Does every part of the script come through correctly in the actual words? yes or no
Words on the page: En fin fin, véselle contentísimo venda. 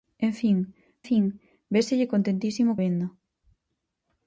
yes